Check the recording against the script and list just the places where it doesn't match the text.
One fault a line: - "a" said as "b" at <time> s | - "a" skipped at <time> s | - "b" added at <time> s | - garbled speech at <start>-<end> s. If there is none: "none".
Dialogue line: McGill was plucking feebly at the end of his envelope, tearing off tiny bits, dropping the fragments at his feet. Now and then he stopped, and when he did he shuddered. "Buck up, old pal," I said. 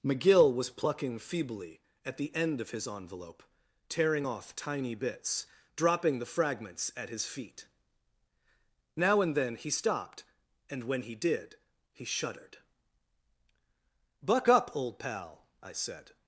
none